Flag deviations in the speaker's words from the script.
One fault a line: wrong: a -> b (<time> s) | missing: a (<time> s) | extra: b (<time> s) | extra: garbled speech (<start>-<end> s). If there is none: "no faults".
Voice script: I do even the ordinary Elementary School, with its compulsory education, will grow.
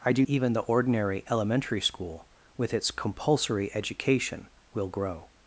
no faults